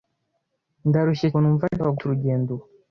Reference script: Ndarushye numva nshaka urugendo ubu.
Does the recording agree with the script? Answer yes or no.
yes